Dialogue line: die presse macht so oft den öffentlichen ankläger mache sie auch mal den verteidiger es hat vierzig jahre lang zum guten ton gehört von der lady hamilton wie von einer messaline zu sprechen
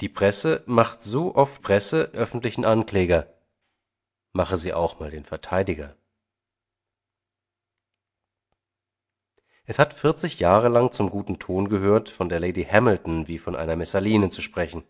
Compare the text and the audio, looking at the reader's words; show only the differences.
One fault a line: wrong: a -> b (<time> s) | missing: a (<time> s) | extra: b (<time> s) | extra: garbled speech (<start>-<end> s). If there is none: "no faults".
wrong: den -> presse (1.6 s)